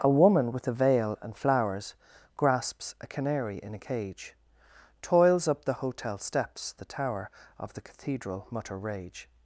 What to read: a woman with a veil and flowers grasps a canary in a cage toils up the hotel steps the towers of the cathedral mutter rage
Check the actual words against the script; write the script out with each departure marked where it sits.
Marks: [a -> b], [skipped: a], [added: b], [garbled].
a woman with a veil and flowers grasps a canary in a cage toils up the hotel steps the [towers -> tower] of the cathedral mutter rage